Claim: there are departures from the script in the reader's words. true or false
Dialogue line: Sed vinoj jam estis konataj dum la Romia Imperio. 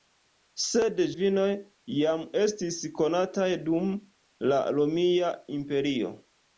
false